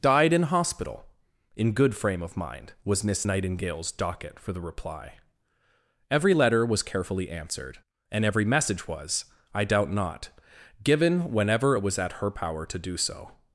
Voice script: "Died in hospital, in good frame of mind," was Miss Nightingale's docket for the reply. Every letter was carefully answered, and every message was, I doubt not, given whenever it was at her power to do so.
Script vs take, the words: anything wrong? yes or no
no